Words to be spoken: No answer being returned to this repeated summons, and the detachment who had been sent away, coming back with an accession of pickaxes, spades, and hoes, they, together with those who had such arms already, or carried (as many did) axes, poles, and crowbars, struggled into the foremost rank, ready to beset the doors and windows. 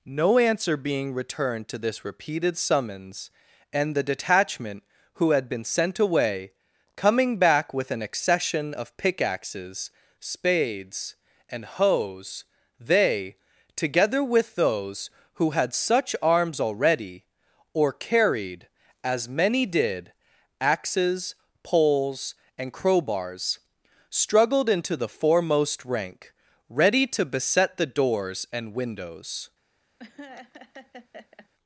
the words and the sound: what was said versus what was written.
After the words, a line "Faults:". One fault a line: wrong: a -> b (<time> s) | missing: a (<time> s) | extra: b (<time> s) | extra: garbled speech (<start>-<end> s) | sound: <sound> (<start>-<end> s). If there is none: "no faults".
No answer being returned to this repeated summons, and the detachment who had been sent away, coming back with an accession of pickaxes, spades, and hoes, they, together with those who had such arms already, or carried (as many did) axes, poles, and crowbars, struggled into the foremost rank, ready to beset the doors and windows.
Faults:
sound: laugh (30.0-31.5 s)